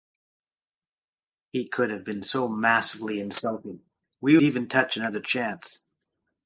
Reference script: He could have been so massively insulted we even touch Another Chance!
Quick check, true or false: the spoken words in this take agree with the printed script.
true